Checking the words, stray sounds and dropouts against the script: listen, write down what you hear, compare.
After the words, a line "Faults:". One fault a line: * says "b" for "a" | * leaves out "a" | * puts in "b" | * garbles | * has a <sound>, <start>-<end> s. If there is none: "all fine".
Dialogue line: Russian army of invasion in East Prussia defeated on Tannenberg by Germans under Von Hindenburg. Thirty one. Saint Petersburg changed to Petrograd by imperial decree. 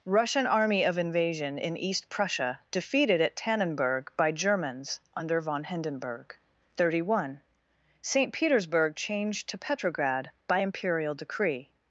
Russian army of invasion in East Prussia defeated at Tannenberg by Germans under Von Hindenburg. Thirty one. Saint Petersburg changed to Petrograd by imperial decree.
Faults:
* says "at" for "on"